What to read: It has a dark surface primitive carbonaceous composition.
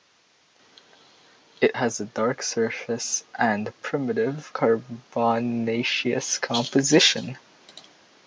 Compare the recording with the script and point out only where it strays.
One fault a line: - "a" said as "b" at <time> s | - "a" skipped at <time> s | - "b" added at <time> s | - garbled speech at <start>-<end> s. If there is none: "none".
- "and" added at 3.4 s